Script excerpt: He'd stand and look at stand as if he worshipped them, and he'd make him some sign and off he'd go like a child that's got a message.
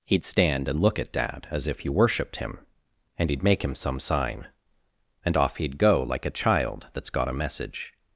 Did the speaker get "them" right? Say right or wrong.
wrong